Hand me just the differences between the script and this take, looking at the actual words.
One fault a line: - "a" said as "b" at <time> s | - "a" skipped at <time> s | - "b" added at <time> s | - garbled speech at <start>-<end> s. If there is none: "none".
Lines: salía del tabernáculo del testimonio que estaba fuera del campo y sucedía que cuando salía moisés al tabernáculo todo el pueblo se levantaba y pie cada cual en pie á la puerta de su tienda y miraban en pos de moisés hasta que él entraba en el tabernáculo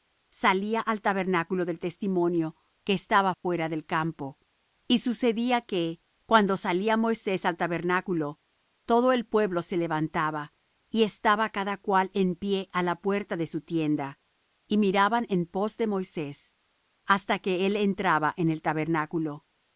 - "del" said as "al" at 0.8 s
- "pie" said as "estaba" at 11.0 s